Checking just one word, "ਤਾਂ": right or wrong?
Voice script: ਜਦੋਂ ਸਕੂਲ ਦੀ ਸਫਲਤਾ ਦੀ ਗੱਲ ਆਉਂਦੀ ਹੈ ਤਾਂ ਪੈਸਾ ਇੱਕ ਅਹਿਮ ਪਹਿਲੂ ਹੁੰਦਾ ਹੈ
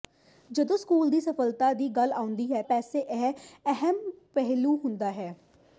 wrong